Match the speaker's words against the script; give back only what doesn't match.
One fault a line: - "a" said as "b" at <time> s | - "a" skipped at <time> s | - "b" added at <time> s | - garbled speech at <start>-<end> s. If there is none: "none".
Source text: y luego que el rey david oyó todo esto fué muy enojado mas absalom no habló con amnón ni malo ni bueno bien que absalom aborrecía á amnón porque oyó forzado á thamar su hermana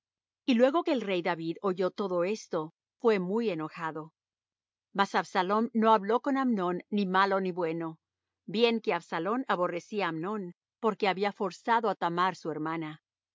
- "oyó" said as "había" at 11.1 s